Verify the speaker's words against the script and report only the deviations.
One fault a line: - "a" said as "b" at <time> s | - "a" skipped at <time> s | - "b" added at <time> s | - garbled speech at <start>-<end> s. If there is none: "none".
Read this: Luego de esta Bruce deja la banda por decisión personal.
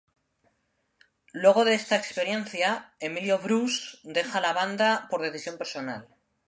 - "experiencia Emilio" added at 1.9 s